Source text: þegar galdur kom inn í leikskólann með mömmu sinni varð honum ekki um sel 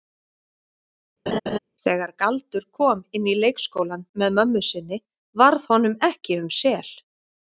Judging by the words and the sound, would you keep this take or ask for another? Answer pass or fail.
fail